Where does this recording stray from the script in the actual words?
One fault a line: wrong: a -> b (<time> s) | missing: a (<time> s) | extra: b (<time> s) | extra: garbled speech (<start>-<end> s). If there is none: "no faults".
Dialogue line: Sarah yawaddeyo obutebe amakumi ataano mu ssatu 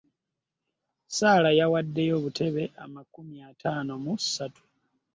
no faults